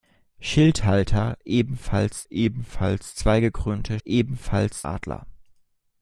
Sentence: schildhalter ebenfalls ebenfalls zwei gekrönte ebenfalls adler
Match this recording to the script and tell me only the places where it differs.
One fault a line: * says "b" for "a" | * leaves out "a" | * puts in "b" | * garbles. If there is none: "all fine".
all fine